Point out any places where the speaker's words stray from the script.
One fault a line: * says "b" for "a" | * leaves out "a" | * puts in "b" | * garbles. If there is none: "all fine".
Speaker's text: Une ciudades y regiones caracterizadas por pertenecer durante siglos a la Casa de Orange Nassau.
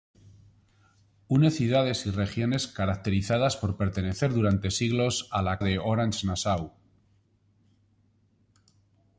* leaves out "Casa"